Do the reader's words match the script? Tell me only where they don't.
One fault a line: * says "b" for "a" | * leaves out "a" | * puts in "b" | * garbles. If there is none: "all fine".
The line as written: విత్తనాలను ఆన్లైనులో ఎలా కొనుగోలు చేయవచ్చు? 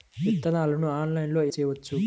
* leaves out "ఎలా కొనుగోలు"